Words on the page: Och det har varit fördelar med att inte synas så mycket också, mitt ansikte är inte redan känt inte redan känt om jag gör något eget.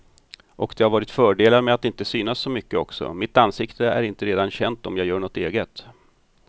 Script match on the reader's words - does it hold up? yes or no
no